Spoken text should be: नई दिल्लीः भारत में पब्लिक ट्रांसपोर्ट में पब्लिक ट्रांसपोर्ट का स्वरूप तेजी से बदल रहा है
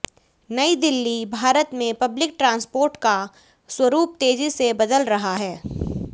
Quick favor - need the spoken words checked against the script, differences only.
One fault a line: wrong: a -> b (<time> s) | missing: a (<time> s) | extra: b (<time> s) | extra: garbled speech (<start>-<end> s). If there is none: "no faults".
missing: में पब्लिक ट्रांसपोर्ट (3.0 s)